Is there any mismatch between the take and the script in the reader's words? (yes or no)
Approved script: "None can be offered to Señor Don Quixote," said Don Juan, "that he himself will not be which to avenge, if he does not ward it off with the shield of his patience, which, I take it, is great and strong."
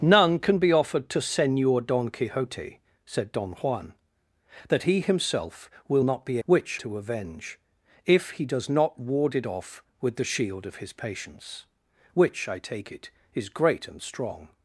no